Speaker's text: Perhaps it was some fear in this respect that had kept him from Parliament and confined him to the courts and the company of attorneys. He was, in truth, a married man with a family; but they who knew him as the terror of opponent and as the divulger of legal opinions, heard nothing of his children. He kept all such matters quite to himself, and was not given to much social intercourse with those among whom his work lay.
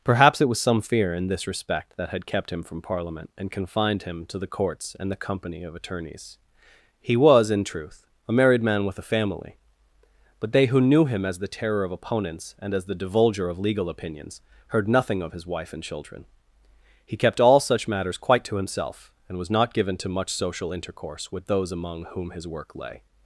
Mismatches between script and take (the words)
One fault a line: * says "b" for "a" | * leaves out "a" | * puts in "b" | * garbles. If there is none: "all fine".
* says "opponents" for "opponent"
* puts in "wife and"